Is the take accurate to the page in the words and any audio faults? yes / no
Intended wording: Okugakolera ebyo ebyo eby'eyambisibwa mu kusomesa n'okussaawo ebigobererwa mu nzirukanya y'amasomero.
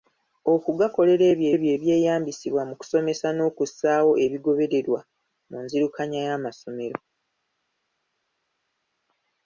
yes